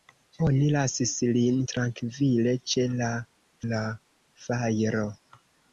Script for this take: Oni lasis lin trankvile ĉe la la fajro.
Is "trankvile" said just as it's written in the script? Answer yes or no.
yes